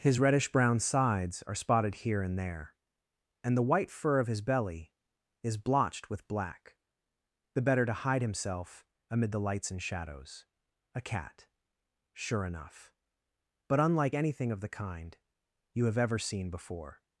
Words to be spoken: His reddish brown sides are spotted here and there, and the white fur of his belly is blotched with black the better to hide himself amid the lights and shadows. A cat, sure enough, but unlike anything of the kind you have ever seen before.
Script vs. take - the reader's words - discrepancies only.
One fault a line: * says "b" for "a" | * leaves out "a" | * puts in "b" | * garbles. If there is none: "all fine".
all fine